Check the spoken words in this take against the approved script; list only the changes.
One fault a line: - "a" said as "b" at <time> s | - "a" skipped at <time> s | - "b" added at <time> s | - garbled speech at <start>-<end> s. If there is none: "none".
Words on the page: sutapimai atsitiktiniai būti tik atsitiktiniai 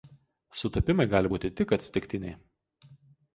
- "atsitiktiniai" said as "gali" at 1.1 s